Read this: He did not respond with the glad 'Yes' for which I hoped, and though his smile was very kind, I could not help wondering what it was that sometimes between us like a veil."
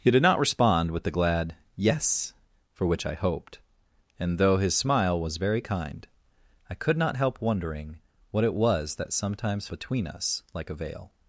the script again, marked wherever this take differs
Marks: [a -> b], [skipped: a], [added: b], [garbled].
He did not respond with the glad 'Yes' for which I hoped, and though his smile was very kind, I could not help wondering what it was that sometimes between us like a veil."